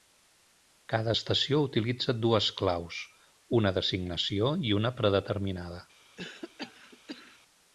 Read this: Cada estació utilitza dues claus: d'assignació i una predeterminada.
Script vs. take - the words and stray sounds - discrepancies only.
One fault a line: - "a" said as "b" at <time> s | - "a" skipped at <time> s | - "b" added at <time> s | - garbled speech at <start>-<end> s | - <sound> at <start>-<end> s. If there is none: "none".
- "una" added at 3.6 s
- cough at 6.2-7.4 s